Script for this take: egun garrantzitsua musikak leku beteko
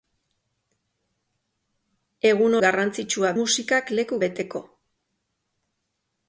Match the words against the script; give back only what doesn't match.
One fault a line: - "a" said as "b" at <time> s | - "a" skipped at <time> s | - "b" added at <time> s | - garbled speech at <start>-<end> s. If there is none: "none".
none